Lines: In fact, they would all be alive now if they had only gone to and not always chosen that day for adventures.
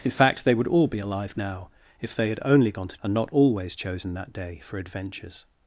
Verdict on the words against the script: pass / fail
pass